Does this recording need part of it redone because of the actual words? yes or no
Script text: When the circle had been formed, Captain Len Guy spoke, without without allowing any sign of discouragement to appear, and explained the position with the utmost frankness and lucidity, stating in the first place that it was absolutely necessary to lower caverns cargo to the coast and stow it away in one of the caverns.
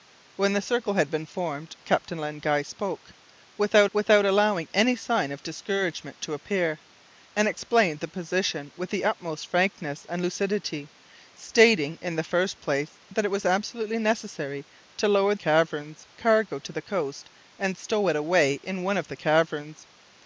no